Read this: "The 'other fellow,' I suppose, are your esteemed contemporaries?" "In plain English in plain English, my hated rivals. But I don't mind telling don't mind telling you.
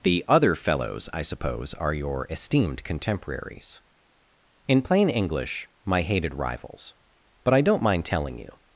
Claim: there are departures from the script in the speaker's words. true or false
true